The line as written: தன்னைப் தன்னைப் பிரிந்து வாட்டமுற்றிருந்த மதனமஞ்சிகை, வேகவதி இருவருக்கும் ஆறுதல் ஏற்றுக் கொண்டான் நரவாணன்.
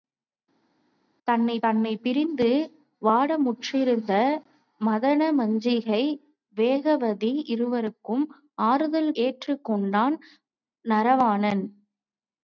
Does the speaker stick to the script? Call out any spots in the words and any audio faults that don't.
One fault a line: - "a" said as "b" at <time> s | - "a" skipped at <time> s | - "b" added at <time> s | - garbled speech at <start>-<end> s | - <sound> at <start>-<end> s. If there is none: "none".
none